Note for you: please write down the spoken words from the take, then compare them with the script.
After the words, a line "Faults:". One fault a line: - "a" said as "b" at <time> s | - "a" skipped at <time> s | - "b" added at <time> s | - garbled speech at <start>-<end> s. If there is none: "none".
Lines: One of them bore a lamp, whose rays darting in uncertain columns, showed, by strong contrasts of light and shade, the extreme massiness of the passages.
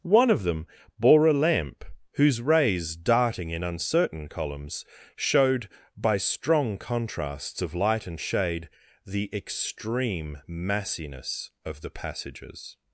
One of them bore a lamp, whose rays darting in uncertain columns, showed, by strong contrasts of light and shade, the extreme massiness of the passages.
Faults:
none